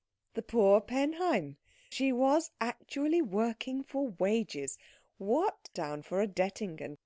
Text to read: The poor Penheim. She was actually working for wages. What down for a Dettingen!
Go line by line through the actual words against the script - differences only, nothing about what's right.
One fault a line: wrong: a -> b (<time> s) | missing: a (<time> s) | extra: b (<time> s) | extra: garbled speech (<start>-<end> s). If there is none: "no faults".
no faults